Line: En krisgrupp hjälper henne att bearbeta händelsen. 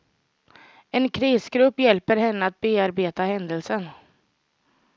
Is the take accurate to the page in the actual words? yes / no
yes